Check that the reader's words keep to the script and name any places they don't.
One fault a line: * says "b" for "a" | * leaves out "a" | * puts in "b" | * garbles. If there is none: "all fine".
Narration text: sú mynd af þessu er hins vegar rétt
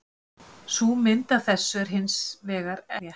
all fine